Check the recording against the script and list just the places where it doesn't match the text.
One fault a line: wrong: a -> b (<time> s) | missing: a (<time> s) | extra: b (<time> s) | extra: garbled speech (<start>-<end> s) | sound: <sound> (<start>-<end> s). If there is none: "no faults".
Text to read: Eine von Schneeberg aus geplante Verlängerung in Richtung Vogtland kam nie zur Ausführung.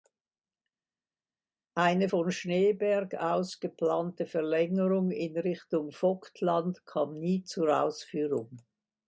no faults